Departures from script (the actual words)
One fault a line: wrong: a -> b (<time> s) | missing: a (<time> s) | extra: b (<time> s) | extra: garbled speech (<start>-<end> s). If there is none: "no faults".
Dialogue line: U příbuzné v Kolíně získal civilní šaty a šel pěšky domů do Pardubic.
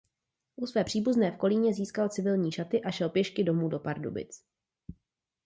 extra: své (0.7 s)